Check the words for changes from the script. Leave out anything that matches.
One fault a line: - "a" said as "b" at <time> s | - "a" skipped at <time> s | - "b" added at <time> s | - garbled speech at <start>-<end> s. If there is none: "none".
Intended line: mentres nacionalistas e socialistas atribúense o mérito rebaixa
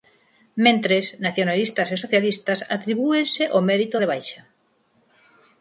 none